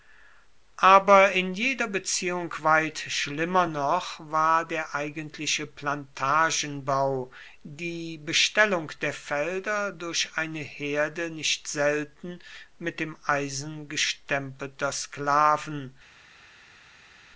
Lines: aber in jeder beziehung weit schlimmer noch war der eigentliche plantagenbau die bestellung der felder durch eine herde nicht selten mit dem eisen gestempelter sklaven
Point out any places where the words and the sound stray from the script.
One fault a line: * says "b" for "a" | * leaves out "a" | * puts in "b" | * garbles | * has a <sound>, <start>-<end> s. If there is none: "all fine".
all fine